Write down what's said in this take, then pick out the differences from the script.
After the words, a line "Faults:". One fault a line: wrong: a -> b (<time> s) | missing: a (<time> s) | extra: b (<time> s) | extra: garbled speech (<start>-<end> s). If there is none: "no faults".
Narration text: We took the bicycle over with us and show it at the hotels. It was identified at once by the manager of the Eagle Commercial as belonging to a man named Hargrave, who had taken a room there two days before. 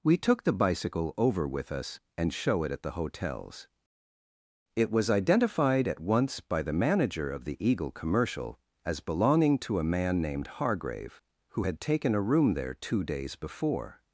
We took the bicycle over with us and show it at the hotels. It was identified at once by the manager of the Eagle Commercial as belonging to a man named Hargrave, who had taken a room there two days before.
Faults:
no faults